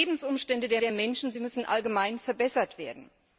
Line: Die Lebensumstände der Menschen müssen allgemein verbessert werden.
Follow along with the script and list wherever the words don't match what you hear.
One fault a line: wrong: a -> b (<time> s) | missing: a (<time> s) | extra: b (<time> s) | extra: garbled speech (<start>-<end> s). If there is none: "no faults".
extra: der (0.8 s)